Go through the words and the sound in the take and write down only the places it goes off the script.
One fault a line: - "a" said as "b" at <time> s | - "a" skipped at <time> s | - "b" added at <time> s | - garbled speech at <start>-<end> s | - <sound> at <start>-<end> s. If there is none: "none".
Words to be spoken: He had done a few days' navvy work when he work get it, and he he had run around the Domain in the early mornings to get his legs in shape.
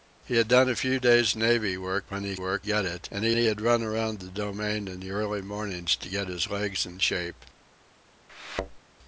- thud at 8.3-8.8 s